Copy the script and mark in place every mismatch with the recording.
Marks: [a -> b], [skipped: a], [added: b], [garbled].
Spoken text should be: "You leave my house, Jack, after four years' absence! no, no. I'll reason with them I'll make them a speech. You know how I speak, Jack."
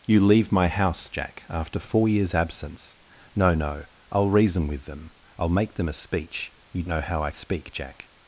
"You leave my house, Jack, after four years' absence! no, no. I'll reason with them I'll make them a speech. You know how I speak, Jack."